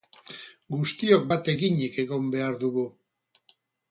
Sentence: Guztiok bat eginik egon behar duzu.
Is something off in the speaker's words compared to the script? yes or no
yes